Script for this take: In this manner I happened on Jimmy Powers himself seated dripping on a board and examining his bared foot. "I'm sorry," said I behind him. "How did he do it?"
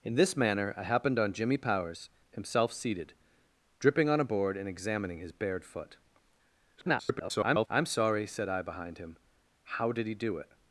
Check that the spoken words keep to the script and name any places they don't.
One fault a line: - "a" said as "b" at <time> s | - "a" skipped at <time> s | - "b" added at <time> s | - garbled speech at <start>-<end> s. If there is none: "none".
- garbled speech at 6.8-7.7 s